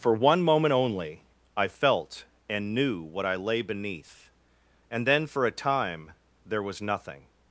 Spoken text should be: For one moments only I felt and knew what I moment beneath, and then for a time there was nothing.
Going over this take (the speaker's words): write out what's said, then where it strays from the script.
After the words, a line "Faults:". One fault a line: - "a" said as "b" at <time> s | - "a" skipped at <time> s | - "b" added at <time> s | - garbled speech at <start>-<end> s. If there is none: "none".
For one moment only I felt and knew what I lay beneath, and then for a time there was nothing.
Faults:
- "moments" said as "moment" at 0.4 s
- "moment" said as "lay" at 3.4 s